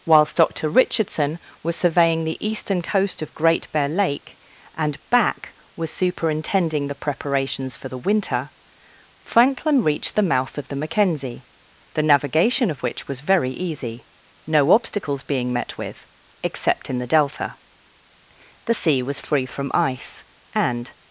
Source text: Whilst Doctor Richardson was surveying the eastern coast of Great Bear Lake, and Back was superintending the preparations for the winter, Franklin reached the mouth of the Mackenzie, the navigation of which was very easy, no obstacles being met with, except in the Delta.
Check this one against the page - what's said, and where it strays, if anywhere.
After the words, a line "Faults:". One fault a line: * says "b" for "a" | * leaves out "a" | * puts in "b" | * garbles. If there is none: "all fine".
Whilst Doctor Richardson was surveying the eastern coast of Great Bear Lake, and Back was superintending the preparations for the winter, Franklin reached the mouth of the Mackenzie, the navigation of which was very easy, no obstacles being met with, except in the Delta. The sea was free from ice, and
Faults:
* puts in "The sea was free from ice and"